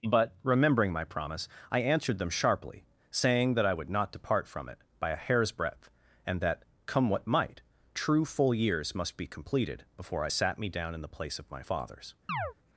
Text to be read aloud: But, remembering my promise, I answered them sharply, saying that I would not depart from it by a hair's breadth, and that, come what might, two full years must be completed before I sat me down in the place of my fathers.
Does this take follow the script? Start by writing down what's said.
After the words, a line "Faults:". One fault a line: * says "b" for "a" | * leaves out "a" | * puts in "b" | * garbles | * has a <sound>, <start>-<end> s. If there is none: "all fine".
But, remembering my promise, I answered them sharply, saying that I would not depart from it by a hair's breadth, and that, come what might, true full years must be completed before I sat me down in the place of my fathers.
Faults:
* says "true" for "two"
* has a chirp, 12.3-12.5 s